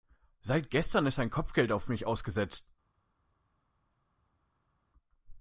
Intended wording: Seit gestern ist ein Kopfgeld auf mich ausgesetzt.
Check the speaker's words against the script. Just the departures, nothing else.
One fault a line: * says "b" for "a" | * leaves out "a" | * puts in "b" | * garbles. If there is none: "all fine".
all fine